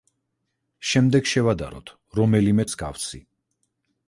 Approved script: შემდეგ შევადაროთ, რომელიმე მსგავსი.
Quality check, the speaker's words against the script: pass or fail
pass